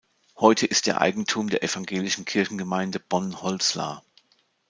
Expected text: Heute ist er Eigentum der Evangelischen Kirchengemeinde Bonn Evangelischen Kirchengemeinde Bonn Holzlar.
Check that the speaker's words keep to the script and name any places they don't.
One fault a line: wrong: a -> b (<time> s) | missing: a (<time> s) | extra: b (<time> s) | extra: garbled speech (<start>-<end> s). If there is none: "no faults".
missing: Evangelischen Kirchengemeinde Bonn (3.4 s)